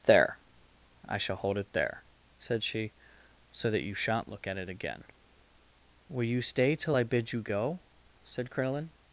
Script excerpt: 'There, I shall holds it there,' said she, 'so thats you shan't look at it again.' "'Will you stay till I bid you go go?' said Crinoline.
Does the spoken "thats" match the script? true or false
false